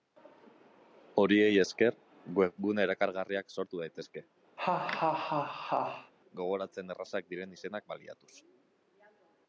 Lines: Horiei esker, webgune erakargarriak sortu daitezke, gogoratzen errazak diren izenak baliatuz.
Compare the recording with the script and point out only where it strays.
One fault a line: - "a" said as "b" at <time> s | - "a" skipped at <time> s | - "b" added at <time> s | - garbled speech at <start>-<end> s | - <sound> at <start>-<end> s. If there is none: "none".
- laugh at 4.6-6.1 s